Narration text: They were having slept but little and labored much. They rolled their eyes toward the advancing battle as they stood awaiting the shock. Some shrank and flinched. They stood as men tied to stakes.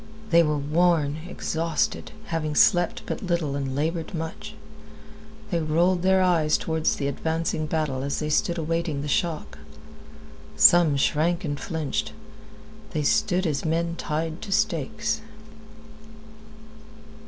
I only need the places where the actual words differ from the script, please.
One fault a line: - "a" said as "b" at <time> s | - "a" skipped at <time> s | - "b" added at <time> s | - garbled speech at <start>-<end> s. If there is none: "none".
- "worn exhausted" added at 0.6 s